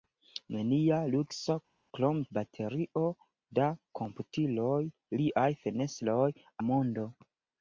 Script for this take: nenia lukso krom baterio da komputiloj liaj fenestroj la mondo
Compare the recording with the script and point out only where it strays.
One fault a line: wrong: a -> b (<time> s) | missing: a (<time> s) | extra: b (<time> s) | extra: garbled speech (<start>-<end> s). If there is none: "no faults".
no faults